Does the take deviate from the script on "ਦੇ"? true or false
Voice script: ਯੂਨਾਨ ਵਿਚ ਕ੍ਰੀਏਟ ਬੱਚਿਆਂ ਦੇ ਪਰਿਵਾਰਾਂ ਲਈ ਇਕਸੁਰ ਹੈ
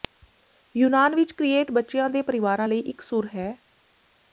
false